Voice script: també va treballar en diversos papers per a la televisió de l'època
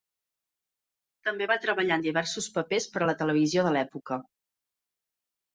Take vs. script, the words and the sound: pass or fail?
pass